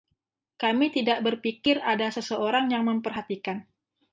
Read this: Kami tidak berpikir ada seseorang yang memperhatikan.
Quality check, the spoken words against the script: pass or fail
pass